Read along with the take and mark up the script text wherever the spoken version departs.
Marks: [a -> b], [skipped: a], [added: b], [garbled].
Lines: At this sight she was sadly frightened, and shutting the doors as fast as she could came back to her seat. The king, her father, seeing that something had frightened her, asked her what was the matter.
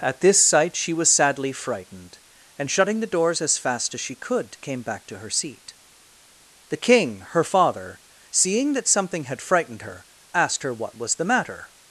At this sight she was sadly frightened, and shutting the doors as fast as she could came back to her seat. The king, her father, seeing that something had frightened her, asked her what was the matter.